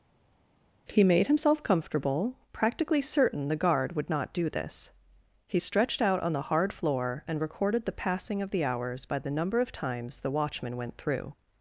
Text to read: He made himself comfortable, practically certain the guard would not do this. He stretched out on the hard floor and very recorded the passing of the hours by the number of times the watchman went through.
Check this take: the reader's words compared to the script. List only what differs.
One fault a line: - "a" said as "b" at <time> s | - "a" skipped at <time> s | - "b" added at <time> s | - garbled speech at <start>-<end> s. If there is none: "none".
- "very" skipped at 7.4 s